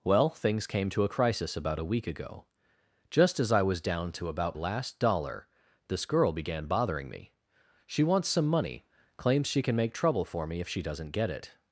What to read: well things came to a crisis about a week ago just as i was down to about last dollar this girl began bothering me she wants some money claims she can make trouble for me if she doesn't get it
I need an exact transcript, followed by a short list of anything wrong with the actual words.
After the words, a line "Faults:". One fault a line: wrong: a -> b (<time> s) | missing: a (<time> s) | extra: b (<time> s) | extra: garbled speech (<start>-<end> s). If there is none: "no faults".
well things came to a crisis about a week ago just as i was down to about last dollar this girl began bothering me she wants some money claims she can make trouble for me if she doesn't get it
Faults:
no faults